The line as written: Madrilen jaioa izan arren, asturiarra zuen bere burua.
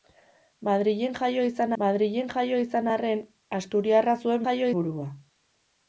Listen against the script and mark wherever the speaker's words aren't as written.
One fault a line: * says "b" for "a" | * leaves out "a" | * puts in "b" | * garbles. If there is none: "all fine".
* puts in "madrilen jaioa izan"
* says "jaioa" for "bere"